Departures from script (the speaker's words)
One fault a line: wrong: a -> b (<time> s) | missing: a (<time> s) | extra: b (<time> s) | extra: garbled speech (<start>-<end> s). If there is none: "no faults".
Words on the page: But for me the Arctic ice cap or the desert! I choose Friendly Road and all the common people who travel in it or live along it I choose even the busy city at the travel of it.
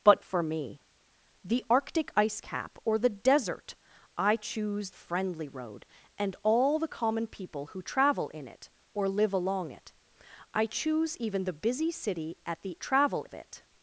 no faults